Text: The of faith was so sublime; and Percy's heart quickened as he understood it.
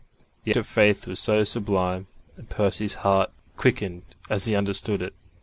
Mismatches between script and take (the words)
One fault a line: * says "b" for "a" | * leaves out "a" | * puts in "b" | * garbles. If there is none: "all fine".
all fine